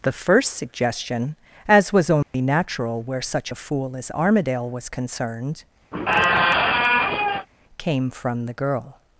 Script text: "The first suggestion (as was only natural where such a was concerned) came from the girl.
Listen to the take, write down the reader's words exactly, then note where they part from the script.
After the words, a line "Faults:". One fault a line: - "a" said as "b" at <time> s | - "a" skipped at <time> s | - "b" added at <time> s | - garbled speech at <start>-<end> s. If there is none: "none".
"The first suggestion (as was only natural where such a fool as Armadale was concerned) came from the girl.
Faults:
- "fool as Armadale" added at 3.5 s